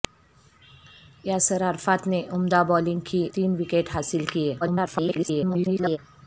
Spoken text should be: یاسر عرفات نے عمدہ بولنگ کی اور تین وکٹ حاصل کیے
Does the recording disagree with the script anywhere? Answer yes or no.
yes